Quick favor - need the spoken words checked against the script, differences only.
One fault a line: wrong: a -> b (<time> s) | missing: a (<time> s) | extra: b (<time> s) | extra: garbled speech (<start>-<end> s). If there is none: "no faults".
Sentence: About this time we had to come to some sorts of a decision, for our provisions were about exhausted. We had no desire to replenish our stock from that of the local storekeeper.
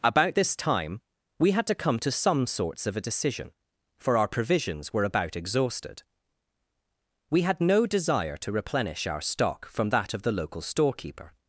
no faults